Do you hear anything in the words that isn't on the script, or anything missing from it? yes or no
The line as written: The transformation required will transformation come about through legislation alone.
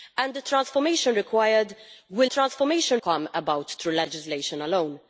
no